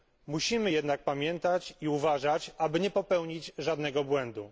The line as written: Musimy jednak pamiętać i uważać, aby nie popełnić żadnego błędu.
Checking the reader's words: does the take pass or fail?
pass